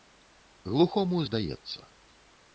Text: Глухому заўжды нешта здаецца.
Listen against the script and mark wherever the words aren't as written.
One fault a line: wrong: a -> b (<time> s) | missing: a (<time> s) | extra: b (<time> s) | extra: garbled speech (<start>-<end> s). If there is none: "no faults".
missing: заўжды нешта (1.2 s)